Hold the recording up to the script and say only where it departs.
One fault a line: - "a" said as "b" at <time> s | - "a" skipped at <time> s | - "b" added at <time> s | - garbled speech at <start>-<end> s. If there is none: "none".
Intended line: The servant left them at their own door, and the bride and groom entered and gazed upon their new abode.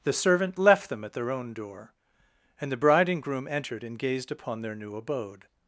none